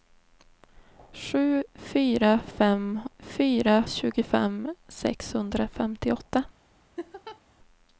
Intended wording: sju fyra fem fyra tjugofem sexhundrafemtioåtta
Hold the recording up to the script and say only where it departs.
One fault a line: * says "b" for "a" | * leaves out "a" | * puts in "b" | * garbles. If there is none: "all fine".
all fine